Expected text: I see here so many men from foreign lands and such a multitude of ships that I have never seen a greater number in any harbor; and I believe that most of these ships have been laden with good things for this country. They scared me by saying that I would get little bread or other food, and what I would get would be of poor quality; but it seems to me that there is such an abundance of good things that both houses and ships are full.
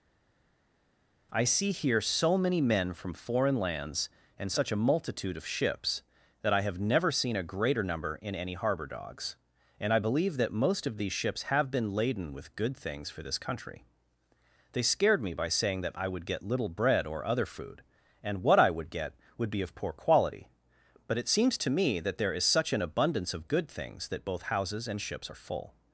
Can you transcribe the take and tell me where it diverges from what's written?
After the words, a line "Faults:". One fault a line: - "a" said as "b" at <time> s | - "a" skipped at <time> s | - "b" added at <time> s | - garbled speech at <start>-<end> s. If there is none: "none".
I see here so many men from foreign lands and such a multitude of ships that I have never seen a greater number in any harbor; dogs and I believe that most of these ships have been laden with good things for this country. They scared me by saying that I would get little bread or other food, and what I would get would be of poor quality; but it seems to me that there is such an abundance of good things that both houses and ships are full.
Faults:
- "dogs" added at 8.9 s